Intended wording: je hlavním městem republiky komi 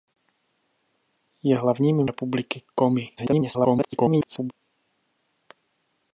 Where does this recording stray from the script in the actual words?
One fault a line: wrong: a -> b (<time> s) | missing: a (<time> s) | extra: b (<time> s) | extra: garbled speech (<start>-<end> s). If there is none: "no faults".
missing: městem (2.1 s)
extra: garbled speech (3.2-4.5 s)